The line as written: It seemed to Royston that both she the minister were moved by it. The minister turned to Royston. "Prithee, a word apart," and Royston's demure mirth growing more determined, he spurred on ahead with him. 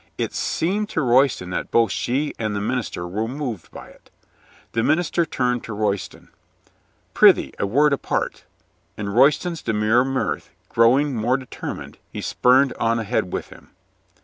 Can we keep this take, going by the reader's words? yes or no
no